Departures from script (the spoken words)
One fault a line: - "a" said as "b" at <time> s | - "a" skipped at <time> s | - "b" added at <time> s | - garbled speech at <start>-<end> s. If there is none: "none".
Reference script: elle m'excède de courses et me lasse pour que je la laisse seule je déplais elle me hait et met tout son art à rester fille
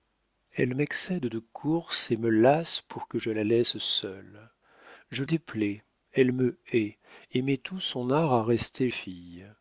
none